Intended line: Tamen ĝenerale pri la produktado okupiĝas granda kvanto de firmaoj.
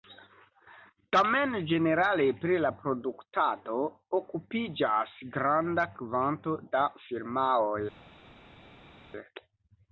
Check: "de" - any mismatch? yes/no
yes